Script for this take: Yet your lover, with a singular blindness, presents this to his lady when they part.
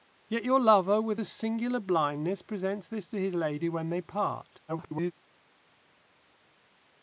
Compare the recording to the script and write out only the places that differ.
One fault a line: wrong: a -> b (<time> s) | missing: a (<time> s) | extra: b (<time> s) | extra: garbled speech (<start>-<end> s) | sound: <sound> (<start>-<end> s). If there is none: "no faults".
extra: garbled speech (4.7-5.1 s)